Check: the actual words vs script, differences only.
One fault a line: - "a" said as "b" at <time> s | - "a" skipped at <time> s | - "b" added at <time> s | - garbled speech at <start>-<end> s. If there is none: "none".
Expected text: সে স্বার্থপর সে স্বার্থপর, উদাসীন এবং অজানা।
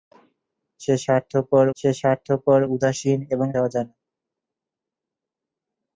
none